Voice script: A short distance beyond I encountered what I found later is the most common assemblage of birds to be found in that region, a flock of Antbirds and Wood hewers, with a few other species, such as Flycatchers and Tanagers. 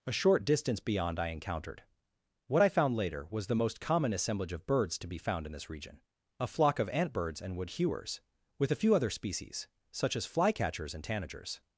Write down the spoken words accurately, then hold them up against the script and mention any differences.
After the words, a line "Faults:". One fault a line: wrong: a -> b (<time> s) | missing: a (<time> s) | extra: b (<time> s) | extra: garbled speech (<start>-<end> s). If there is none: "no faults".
A short distance beyond I encountered what I found later was the most common assemblage of birds to be found in this region, a flock of Antbirds and Wood hewers, with a few other species, such as Flycatchers and Tanagers.
Faults:
wrong: is -> was (3.3 s)
wrong: that -> this (5.5 s)